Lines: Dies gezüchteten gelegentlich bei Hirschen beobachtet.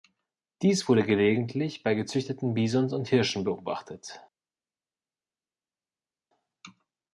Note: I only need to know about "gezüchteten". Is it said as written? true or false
false